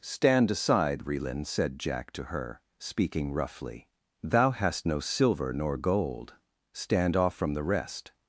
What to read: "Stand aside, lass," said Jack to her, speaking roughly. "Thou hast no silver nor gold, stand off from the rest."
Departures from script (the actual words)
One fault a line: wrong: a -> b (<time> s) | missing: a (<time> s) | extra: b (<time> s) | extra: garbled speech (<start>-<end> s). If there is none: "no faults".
wrong: lass -> relin (1.1 s)